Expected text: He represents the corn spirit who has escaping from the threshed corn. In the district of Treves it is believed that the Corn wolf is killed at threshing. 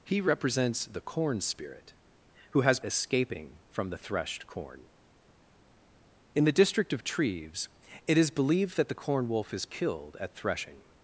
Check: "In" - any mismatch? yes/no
no